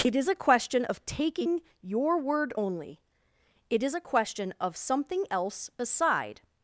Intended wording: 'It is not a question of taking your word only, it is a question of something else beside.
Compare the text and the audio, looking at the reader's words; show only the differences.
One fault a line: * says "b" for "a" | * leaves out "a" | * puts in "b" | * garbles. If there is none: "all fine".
* leaves out "not"